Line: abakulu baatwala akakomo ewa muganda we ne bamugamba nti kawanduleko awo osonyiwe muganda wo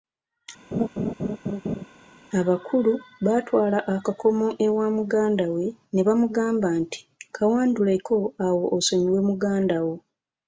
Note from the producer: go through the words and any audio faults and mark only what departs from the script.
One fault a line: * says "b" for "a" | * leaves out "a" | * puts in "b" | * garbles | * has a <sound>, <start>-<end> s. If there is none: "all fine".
* has a laugh, 0.7-1.9 s